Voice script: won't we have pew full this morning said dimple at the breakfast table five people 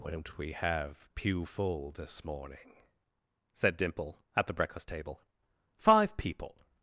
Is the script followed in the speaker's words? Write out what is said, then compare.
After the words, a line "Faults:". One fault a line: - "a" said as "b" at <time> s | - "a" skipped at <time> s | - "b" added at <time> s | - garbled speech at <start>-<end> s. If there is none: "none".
won't we have pew full this morning said dimple at the breakfast table five people
Faults:
none